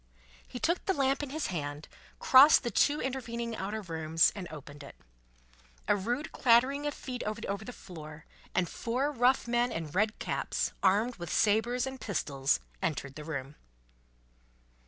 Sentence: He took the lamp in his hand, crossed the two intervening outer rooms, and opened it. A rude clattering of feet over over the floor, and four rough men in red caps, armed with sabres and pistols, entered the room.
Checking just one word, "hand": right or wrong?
right